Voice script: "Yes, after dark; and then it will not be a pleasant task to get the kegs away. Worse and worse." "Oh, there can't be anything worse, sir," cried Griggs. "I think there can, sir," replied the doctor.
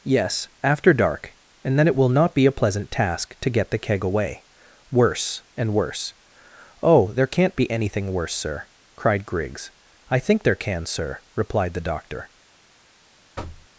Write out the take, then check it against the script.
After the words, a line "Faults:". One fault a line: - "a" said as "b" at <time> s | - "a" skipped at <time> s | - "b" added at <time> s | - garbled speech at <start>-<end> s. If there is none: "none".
"Yes, after dark; and then it will not be a pleasant task to get the keg away. Worse and worse." "Oh, there can't be anything worse, sir," cried Griggs. "I think there can, sir," replied the doctor.
Faults:
- "kegs" said as "keg" at 3.8 s